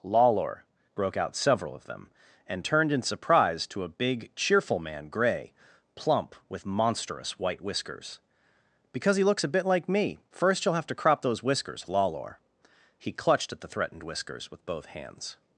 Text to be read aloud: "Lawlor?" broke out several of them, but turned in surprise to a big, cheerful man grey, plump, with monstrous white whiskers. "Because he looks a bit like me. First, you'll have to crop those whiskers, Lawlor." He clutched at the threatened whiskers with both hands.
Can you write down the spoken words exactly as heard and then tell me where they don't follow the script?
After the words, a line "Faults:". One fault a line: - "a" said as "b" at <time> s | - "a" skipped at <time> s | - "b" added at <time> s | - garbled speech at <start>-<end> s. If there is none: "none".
"Lawlor?" broke out several of them, and turned in surprise to a big, cheerful man grey, plump, with monstrous white whiskers. "Because he looks a bit like me. First, you'll have to crop those whiskers, Lawlor." He clutched at the threatened whiskers with both hands.
Faults:
- "but" said as "and" at 2.5 s